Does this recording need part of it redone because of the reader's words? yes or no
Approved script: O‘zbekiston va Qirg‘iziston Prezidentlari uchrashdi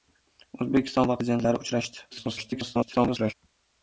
yes